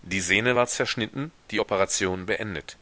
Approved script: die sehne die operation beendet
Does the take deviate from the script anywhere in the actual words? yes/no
yes